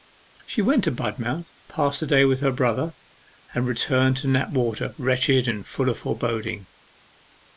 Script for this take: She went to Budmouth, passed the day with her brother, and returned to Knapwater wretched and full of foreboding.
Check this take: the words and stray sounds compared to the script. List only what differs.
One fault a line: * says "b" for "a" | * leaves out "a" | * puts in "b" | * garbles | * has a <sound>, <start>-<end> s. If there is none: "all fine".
all fine